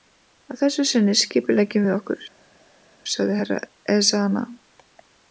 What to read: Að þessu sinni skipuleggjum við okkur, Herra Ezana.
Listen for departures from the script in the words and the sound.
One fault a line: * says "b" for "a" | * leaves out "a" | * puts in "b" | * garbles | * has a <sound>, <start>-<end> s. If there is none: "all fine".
* puts in "sagði"